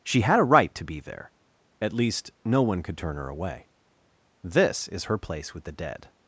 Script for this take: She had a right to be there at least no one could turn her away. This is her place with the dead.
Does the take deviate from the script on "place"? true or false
false